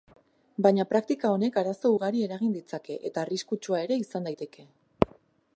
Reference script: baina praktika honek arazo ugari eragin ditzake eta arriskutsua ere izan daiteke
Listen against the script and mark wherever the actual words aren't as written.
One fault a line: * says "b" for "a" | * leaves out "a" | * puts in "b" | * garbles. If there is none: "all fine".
all fine